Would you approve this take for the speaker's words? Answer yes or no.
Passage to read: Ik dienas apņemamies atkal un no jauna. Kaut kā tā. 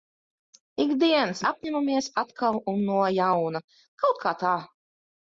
yes